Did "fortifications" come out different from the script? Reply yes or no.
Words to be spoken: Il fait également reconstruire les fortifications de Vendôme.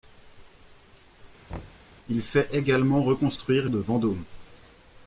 yes